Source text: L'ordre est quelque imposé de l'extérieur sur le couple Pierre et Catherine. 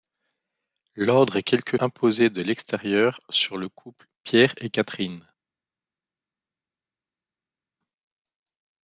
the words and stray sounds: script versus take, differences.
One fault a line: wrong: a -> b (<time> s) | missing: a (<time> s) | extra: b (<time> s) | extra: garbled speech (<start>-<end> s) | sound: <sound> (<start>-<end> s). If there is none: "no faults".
no faults